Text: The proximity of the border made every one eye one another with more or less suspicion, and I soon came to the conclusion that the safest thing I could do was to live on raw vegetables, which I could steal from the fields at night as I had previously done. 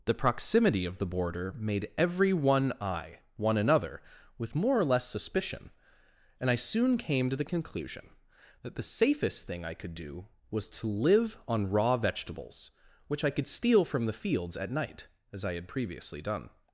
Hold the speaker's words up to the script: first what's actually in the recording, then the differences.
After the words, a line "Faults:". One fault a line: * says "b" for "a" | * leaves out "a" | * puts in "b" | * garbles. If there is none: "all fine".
The proximity of the border made every one eye one another with more or less suspicion, and I soon came to the conclusion that the safest thing I could do was to live on raw vegetables, which I could steal from the fields at night as I had previously done.
Faults:
all fine